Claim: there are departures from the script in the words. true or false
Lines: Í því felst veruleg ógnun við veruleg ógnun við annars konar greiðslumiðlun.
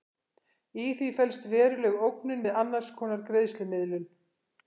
true